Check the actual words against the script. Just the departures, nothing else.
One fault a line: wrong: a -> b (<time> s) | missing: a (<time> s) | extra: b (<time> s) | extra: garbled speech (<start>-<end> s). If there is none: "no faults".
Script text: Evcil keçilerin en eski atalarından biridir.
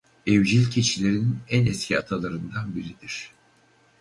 no faults